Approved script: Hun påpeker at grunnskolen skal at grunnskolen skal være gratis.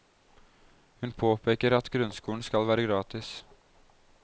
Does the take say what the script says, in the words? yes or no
no